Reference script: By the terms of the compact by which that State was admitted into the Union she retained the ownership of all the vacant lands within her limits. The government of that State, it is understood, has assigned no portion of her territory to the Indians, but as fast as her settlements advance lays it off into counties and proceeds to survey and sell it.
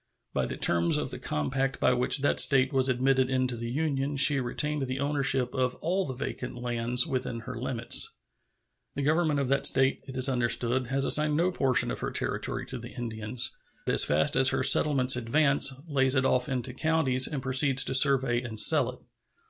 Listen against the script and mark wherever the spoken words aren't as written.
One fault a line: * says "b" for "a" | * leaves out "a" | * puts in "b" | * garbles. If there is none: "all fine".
* leaves out "but"